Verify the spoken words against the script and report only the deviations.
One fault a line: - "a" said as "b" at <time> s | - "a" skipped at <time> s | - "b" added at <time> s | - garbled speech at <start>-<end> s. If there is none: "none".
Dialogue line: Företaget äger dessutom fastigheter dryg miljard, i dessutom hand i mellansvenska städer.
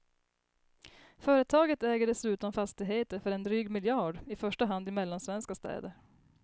- "för en" added at 3.2 s
- "dessutom" said as "första" at 4.4 s